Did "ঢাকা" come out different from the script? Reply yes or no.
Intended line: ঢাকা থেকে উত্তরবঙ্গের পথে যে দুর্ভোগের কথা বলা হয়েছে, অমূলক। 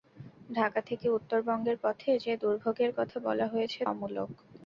no